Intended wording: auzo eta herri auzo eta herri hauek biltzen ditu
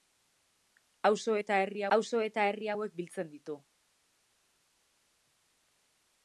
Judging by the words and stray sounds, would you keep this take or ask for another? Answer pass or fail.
pass